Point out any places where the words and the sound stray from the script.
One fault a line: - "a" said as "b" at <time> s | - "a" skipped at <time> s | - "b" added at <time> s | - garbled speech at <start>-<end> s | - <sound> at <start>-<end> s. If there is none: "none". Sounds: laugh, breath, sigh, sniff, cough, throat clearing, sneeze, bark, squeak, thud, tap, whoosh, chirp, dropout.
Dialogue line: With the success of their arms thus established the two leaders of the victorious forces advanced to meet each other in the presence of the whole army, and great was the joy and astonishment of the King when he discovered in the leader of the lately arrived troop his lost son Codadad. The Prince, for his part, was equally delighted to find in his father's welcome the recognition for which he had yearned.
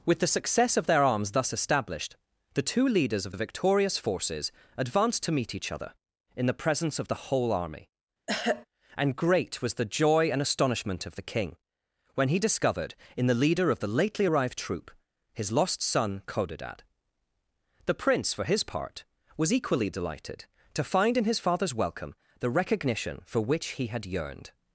- throat clearing at 8.3-8.7 s